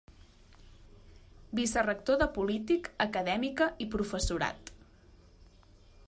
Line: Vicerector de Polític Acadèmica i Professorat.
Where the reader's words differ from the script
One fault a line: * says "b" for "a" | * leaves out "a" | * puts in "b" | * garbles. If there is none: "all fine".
all fine